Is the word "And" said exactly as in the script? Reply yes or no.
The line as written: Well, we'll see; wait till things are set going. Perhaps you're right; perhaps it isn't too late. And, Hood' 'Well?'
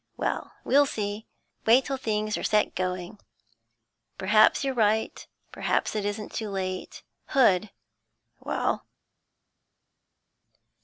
no